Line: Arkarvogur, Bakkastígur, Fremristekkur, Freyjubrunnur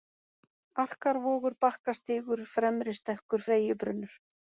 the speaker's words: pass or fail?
pass